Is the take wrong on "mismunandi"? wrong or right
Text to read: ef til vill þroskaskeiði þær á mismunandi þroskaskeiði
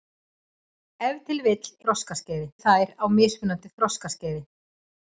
right